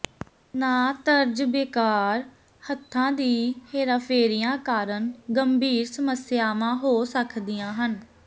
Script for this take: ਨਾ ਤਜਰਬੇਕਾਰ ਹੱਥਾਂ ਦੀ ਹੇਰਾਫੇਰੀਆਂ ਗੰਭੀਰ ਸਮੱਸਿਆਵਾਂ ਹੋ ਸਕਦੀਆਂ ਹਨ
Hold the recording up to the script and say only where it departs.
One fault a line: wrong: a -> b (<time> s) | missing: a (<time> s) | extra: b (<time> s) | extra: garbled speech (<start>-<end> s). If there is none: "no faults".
extra: ਕਾਰਨ (4.6 s)